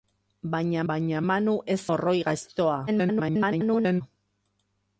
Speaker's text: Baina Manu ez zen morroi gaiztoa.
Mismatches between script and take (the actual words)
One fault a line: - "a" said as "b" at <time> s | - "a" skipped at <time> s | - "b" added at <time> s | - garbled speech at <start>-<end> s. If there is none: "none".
- "baina" added at 0.9 s
- "zen" skipped at 1.8 s
- garbled speech at 2.9-4.0 s